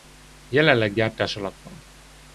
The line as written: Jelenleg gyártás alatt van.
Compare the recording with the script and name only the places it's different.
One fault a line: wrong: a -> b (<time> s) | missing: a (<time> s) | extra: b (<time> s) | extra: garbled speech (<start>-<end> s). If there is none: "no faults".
no faults